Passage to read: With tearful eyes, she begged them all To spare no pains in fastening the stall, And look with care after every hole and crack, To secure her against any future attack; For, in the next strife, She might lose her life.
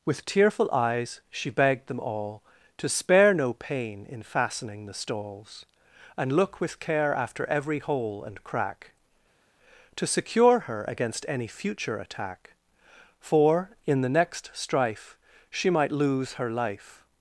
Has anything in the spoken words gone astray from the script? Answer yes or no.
yes